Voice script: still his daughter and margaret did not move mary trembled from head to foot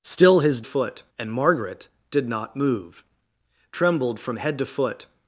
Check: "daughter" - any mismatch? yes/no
yes